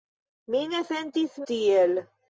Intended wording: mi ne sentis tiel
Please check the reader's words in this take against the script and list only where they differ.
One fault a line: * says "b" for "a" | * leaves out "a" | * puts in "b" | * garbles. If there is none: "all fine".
all fine